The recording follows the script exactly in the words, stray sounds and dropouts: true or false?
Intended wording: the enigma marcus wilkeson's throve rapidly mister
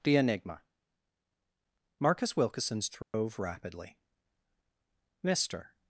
false